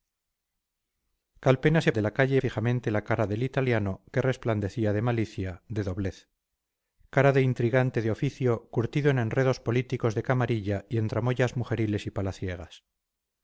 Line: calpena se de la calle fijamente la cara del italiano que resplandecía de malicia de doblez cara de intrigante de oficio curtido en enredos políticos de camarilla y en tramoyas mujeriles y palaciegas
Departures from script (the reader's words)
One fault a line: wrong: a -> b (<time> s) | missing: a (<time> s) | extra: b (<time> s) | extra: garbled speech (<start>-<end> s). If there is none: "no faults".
no faults